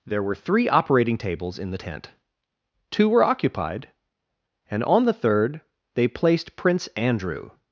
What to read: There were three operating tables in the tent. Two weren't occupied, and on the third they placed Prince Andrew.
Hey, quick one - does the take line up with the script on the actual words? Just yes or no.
no